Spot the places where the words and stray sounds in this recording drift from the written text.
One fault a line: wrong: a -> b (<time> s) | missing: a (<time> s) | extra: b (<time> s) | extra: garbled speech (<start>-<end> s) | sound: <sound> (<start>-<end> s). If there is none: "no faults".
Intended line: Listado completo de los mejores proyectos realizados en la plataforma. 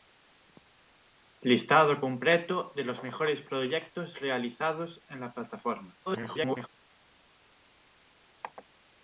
extra: garbled speech (6.1-6.7 s)